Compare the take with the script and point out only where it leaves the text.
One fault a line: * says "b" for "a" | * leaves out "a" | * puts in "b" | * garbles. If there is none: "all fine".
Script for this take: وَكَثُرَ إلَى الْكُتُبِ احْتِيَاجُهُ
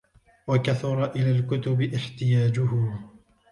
all fine